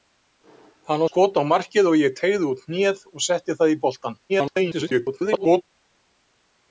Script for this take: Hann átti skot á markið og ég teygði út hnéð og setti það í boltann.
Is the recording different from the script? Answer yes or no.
yes